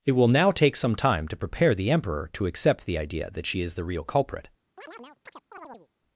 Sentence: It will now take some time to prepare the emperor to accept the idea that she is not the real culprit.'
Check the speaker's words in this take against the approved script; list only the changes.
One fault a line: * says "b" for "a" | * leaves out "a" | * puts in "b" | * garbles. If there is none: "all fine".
* leaves out "not"